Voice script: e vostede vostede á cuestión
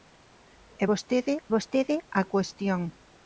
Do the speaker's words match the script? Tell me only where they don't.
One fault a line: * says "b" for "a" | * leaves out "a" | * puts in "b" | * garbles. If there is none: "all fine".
all fine